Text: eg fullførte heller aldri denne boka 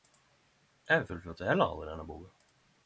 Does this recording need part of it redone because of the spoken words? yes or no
no